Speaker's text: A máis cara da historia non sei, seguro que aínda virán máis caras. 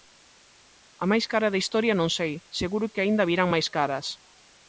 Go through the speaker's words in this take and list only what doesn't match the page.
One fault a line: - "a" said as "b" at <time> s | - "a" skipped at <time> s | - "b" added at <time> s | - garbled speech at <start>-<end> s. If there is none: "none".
none